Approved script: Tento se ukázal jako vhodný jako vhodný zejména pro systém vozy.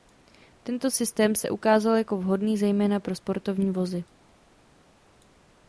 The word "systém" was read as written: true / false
false